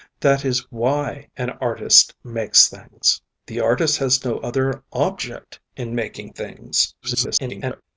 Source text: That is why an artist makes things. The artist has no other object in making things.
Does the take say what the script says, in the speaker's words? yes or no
no